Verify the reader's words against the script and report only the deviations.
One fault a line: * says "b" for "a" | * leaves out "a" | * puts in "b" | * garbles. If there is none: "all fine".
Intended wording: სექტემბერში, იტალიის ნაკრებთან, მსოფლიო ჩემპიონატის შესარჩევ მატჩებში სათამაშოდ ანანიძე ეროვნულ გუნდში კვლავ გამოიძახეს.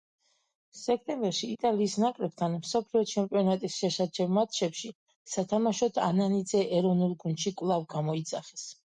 all fine